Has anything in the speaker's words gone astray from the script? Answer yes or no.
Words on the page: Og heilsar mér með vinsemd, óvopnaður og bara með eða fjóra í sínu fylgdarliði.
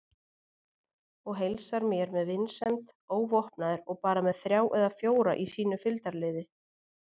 yes